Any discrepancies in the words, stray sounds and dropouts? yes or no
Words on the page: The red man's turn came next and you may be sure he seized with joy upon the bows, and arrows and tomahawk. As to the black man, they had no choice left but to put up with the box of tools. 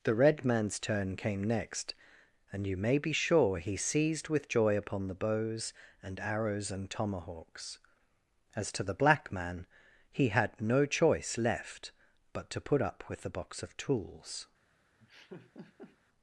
yes